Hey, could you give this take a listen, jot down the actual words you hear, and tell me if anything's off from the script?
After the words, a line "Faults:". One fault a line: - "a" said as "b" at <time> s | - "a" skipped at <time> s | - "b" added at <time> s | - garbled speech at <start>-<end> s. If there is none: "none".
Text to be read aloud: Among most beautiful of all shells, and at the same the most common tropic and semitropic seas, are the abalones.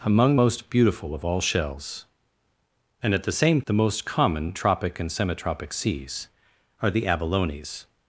Among most beautiful of all shells, and at the same the most common tropic and semitropic seas, are the abalones.
Faults:
none